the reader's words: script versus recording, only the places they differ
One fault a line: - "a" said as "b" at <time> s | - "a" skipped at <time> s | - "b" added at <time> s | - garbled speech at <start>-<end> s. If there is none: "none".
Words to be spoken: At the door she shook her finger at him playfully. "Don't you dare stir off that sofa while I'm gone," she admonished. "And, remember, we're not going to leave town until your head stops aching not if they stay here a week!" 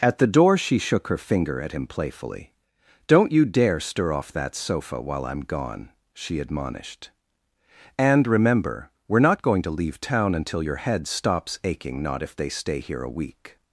none